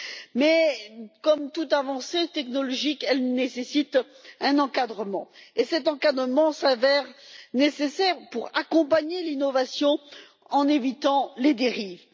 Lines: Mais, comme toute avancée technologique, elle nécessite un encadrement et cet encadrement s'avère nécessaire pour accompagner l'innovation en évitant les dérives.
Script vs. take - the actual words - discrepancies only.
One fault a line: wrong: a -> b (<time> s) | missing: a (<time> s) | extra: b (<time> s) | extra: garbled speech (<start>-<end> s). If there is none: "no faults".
no faults